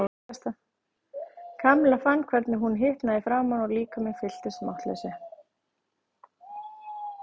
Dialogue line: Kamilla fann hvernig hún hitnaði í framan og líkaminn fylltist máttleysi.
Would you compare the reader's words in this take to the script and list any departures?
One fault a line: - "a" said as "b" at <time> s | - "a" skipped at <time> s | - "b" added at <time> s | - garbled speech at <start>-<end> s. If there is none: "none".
none